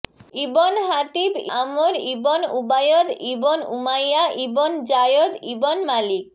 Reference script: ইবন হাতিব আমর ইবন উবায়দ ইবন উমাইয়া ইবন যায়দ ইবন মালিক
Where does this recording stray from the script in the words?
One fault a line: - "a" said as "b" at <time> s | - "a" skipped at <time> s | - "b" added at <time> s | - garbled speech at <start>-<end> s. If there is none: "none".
none